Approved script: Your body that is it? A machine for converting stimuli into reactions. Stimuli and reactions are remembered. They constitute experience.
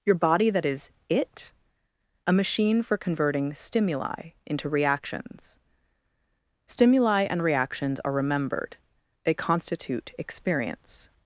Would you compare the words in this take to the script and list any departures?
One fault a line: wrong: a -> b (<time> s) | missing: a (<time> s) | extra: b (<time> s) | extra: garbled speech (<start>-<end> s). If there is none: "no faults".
no faults